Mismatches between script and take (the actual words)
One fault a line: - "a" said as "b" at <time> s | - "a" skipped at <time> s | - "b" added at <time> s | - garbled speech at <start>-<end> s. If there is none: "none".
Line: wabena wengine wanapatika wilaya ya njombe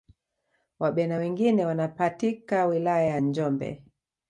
none